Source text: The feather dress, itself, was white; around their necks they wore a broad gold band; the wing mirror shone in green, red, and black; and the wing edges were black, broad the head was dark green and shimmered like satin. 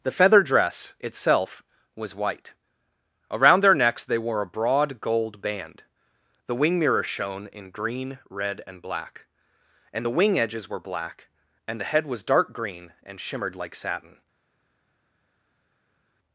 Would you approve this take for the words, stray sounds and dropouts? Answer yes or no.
no